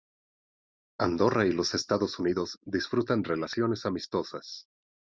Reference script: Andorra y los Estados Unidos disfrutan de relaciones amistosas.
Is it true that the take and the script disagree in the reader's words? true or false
true